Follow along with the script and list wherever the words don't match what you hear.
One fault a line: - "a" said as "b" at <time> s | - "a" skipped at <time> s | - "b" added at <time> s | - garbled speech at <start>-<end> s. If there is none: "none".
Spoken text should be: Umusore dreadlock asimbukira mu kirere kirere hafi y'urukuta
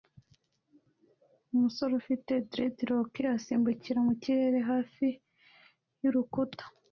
- "ufite" added at 2.0 s
- "kirere" skipped at 4.6 s